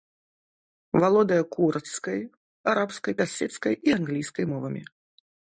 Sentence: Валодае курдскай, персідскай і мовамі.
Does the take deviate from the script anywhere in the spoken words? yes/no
yes